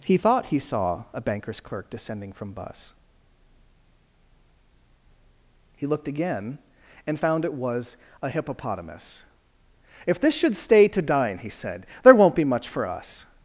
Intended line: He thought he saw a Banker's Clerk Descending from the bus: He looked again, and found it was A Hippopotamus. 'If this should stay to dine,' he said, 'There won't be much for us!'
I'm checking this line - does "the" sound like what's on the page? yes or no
no